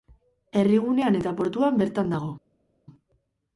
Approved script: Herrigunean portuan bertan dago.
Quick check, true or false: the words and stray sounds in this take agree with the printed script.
false